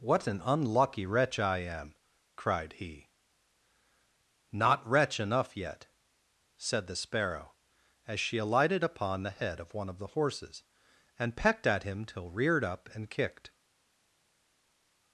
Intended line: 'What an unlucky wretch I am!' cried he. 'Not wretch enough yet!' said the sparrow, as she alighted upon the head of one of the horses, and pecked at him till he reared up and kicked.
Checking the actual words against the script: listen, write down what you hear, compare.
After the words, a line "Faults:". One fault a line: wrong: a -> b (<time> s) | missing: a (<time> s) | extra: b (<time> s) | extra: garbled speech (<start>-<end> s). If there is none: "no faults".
'What an unlucky wretch I am!' cried he. 'Not wretch enough yet!' said the sparrow, as she alighted upon the head of one of the horses, and pecked at him till reared up and kicked.
Faults:
missing: he (12.3 s)